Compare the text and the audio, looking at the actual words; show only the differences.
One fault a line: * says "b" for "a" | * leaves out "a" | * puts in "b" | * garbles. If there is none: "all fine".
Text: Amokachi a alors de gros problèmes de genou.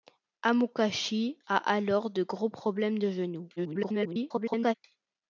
* garbles